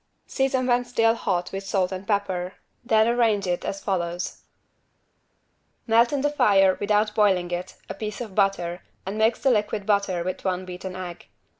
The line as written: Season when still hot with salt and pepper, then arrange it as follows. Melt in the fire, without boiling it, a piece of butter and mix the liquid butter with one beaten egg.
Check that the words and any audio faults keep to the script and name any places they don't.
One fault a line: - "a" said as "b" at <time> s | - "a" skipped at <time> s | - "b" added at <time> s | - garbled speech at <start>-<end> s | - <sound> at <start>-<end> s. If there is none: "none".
none